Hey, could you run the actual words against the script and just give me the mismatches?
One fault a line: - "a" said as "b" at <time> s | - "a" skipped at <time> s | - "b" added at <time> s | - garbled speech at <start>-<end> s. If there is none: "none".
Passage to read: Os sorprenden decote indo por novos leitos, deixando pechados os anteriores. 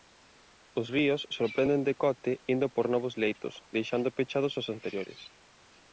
- "ríos" added at 0.9 s